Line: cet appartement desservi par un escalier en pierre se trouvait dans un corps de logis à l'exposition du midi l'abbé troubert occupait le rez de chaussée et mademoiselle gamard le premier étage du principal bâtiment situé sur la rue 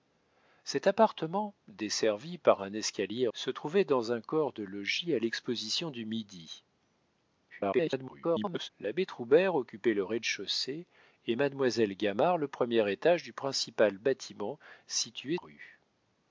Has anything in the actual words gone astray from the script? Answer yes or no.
yes